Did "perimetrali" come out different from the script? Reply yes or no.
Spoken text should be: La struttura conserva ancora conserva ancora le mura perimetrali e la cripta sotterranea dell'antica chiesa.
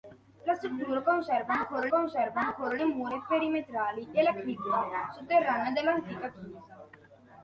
no